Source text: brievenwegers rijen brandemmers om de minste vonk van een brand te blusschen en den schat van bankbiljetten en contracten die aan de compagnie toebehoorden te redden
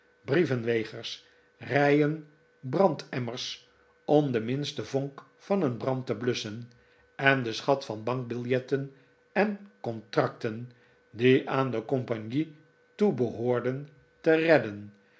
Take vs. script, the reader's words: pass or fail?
pass